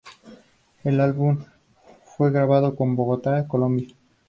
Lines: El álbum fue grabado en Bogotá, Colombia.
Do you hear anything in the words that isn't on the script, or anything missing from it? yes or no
no